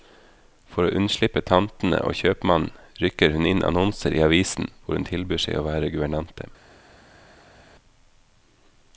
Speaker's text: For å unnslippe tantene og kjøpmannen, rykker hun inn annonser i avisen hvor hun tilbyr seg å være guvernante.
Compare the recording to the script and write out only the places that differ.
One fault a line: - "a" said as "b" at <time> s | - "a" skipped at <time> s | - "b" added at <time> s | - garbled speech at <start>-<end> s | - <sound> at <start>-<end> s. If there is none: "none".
none